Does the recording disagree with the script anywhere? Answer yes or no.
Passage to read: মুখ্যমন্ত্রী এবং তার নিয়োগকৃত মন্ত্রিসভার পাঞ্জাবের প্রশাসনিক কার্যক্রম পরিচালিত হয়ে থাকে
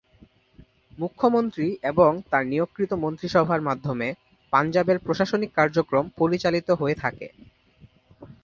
yes